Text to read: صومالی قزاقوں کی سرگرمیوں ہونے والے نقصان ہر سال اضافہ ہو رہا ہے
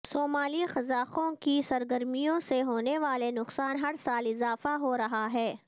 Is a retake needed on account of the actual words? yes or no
yes